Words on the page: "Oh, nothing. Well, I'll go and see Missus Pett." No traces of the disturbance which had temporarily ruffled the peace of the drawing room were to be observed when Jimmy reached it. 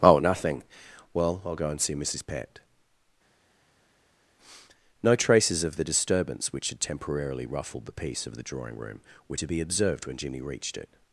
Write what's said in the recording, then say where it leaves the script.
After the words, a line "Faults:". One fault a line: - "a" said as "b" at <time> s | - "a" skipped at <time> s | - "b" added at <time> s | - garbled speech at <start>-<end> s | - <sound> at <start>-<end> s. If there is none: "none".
"Oh, nothing. Well, I'll go and see Missus Pett." No traces of the disturbance which had temporarily ruffled the peace of the drawing room were to be observed when Jimmy reached it.
Faults:
none